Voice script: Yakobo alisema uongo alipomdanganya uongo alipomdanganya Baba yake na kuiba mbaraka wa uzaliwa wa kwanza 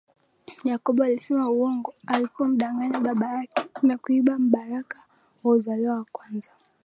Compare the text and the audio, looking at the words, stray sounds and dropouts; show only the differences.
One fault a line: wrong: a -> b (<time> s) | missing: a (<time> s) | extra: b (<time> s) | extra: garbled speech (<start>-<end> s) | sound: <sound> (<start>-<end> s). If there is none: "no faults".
missing: uongo alipomdanganya (3.0 s)